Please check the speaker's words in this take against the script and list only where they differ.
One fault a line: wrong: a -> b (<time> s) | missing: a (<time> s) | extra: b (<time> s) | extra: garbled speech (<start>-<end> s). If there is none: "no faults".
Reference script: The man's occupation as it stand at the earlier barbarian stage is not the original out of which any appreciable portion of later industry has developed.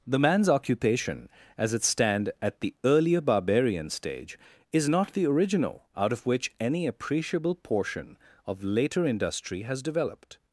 no faults